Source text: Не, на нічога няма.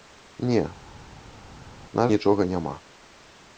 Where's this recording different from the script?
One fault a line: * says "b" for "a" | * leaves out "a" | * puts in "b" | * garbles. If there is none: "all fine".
all fine